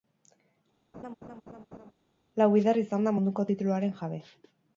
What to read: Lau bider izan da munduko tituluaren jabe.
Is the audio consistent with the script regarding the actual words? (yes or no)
yes